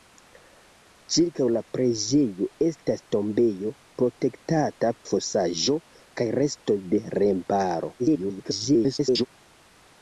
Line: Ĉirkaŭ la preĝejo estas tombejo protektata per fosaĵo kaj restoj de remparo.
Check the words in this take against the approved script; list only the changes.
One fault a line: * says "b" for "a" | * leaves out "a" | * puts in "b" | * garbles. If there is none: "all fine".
* leaves out "per"
* garbles